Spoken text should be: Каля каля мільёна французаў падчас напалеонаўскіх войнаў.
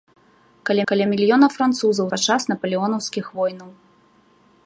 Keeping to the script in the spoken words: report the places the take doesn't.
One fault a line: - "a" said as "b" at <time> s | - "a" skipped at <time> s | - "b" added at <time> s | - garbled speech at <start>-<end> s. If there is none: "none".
none